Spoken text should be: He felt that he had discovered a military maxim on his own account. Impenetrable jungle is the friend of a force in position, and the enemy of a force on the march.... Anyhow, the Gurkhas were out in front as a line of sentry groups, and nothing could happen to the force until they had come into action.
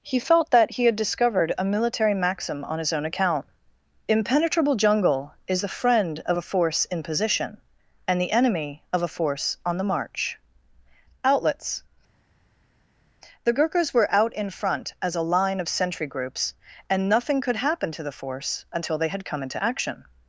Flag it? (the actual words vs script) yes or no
yes